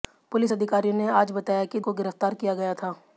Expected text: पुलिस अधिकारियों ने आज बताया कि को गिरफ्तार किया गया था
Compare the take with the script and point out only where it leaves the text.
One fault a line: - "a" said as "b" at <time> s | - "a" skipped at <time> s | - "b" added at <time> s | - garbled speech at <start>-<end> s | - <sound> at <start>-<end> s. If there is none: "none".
none